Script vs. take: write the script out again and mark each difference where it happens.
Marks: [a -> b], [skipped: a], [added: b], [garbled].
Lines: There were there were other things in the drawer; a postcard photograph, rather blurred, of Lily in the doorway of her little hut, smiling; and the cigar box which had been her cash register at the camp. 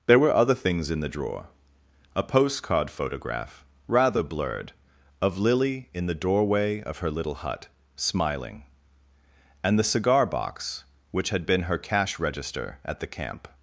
There were [skipped: there were] other things in the drawer; a postcard photograph, rather blurred, of Lily in the doorway of her little hut, smiling; and the cigar box which had been her cash register at the camp.